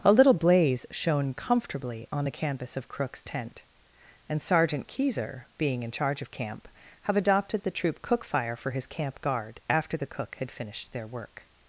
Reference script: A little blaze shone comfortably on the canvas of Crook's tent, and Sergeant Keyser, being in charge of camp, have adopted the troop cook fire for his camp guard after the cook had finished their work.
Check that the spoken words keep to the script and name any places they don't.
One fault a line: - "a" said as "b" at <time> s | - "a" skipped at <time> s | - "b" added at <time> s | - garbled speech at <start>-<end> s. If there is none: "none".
none